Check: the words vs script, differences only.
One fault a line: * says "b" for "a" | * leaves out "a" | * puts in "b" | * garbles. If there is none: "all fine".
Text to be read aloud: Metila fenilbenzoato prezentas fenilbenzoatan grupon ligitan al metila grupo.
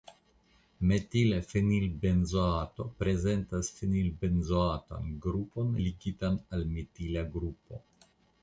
all fine